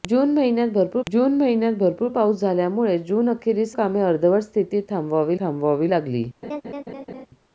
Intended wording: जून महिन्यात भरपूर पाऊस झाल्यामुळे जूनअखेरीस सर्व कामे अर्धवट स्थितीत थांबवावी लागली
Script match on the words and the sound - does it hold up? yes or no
no